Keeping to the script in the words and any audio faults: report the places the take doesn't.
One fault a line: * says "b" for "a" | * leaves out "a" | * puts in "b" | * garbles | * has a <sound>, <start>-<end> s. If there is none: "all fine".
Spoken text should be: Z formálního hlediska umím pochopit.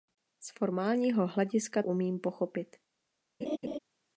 * has a laugh, 3.4-3.8 s